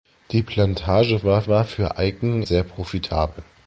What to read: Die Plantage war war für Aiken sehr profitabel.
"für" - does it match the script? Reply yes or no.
yes